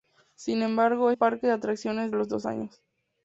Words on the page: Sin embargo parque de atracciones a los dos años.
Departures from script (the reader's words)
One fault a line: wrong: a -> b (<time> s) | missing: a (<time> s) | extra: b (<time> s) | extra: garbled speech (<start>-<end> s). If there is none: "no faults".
no faults